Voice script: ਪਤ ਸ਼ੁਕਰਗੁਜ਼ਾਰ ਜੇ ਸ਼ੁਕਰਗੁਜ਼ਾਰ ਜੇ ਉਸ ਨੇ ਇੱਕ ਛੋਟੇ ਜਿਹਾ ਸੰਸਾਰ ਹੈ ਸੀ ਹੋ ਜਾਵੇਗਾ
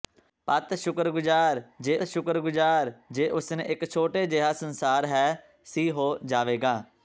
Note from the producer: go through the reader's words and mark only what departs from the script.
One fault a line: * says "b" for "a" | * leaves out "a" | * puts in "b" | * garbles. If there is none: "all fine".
all fine